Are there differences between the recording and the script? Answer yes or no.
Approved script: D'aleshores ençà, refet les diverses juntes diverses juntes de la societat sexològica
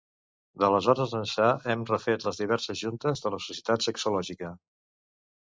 yes